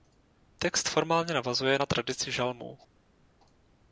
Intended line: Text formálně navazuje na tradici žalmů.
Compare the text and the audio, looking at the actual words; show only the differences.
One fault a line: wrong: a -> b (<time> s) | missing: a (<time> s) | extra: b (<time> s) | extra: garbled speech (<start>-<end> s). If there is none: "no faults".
no faults